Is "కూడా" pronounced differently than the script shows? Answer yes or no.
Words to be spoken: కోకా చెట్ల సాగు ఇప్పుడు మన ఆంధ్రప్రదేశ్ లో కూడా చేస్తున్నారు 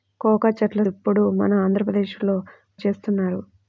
yes